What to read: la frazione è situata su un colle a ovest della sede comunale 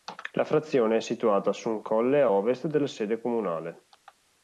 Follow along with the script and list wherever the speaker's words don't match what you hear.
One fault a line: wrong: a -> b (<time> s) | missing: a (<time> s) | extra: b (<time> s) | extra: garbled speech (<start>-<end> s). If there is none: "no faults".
no faults